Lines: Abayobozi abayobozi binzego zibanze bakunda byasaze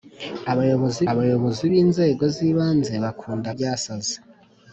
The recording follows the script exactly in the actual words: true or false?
true